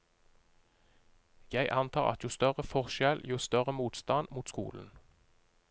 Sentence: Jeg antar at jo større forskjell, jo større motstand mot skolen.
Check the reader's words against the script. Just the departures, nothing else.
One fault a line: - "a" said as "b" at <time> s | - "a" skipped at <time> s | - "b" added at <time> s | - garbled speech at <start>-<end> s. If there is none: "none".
none